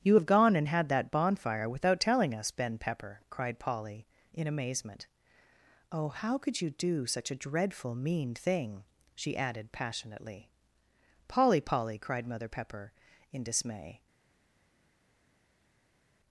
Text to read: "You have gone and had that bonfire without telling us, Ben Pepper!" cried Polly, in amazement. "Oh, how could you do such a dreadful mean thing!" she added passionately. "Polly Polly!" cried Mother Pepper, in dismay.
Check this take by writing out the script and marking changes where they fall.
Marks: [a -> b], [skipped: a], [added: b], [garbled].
"You have gone and had that bonfire without telling us, Ben Pepper!" cried Polly, in amazement. "Oh, how could you do such a dreadful mean thing!" she added passionately. "Polly Polly!" cried Mother Pepper, in dismay.